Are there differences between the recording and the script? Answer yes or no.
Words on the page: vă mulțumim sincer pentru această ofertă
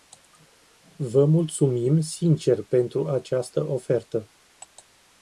no